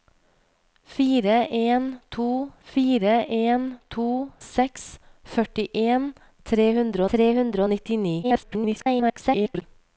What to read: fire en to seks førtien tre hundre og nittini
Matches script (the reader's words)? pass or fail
fail